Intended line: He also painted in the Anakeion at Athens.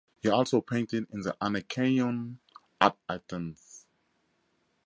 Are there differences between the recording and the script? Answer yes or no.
no